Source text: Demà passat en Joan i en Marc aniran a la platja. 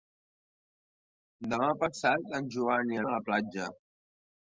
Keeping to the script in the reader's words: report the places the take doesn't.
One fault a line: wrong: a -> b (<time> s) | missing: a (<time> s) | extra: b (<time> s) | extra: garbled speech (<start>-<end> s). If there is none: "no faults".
missing: en Marc aniran (3.0 s)